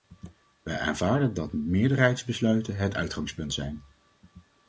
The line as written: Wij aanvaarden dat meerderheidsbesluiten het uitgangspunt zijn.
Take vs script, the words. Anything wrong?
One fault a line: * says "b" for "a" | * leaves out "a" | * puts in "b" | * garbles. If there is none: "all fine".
all fine